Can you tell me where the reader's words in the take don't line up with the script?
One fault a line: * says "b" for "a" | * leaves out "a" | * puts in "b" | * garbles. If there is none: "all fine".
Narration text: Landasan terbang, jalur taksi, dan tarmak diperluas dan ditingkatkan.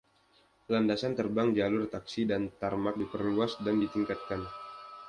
all fine